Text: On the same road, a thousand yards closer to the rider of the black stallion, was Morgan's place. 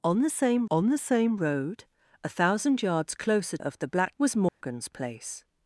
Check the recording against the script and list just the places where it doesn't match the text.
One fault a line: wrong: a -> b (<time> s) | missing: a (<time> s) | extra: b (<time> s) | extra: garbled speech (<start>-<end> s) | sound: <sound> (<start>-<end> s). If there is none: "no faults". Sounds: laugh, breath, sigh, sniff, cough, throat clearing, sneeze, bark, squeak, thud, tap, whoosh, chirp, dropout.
extra: on the same (0.7 s)
missing: to the rider (3.6 s)
missing: stallion (4.2 s)
sound: dropout (4.5-4.6 s)